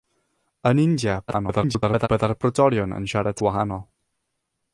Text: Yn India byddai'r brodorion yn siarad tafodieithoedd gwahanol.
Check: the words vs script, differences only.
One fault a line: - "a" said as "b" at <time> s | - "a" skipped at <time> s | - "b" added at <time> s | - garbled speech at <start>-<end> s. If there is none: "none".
- garbled speech at 1.3-2.1 s
- "tafodieithoedd" skipped at 3.4 s